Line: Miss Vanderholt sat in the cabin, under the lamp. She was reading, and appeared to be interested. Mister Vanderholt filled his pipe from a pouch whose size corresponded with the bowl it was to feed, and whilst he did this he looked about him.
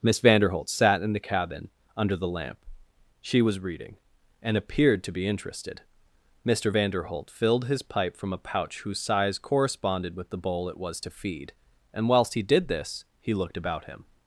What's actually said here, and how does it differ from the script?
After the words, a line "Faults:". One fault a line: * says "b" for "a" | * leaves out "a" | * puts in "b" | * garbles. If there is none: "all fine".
Miss Vanderholt sat in the cabin, under the lamp. She was reading, and appeared to be interested. Mister Vanderholt filled his pipe from a pouch whose size corresponded with the bowl it was to feed, and whilst he did this he looked about him.
Faults:
all fine